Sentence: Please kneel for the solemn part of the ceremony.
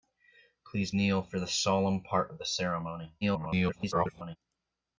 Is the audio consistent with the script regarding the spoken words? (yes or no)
no